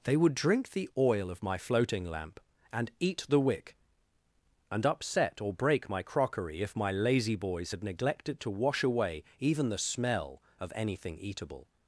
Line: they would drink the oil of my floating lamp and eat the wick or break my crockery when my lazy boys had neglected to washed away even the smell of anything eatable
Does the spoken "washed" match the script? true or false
false